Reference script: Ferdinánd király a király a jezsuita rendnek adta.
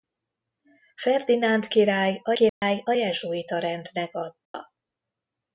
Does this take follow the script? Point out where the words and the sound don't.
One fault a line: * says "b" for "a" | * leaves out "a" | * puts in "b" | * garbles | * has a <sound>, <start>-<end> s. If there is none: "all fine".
* has a dropout, 2.5-2.6 s
* has a dropout, 4.5-4.5 s